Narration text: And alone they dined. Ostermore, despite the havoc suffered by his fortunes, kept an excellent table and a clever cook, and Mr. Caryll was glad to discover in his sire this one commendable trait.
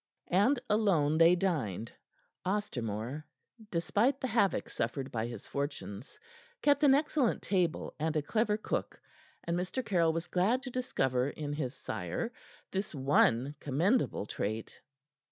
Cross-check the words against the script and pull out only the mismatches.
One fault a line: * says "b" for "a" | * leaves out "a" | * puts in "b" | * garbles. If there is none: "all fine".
all fine